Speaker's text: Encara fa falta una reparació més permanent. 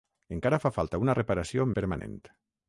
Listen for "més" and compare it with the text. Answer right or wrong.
wrong